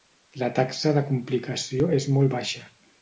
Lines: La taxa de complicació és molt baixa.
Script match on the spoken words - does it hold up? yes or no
yes